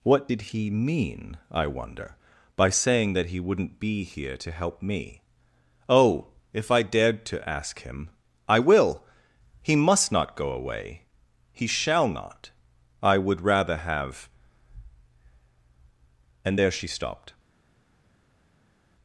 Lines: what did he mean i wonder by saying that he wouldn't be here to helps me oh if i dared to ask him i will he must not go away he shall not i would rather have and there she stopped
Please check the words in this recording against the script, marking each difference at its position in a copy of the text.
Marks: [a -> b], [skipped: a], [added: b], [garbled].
what did he mean i wonder by saying that he wouldn't be here to [helps -> help] me oh if i dared to ask him i will he must not go away he shall not i would rather have and there she stopped